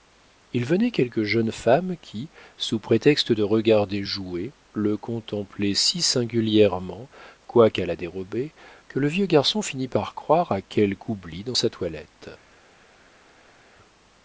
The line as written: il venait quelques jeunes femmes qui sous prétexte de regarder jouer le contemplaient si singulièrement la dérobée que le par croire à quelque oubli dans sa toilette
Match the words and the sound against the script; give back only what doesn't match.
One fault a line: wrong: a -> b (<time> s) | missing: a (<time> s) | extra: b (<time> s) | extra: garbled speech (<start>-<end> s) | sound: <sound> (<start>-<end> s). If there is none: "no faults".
extra: quoiqu'à (7.5 s)
extra: vieux garçon finit (9.1 s)